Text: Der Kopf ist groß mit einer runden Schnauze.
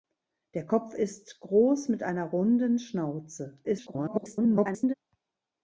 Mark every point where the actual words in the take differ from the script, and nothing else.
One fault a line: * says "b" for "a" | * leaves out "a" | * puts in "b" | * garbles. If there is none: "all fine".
* garbles